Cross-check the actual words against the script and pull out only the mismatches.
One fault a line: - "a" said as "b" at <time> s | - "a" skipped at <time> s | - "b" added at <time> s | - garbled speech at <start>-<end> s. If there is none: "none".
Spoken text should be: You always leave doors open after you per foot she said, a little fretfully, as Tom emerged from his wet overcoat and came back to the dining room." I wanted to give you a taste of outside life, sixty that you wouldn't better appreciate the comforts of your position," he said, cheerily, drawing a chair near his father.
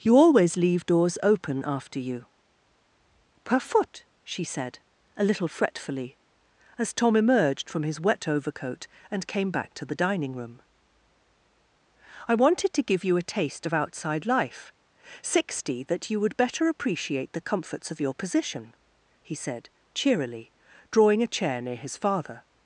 - "wouldn't" said as "would" at 16.2 s